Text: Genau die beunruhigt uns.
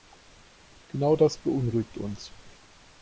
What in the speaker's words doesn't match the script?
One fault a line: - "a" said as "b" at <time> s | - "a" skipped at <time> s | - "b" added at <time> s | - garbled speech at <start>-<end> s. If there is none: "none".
- "die" said as "das" at 1.1 s